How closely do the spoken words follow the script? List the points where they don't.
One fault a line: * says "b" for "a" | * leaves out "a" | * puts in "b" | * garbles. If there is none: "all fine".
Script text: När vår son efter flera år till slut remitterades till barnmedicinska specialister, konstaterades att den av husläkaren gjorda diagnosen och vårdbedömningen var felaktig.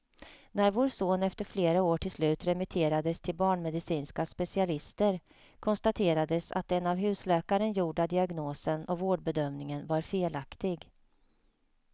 all fine